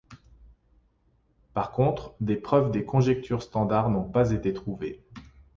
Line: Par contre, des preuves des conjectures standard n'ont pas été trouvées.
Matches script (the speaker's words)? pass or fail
pass